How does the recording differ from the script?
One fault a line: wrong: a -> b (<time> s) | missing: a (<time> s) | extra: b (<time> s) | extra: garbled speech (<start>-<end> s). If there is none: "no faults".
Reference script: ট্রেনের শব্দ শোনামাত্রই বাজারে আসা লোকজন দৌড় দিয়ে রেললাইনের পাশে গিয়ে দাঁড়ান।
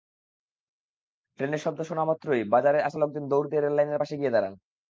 no faults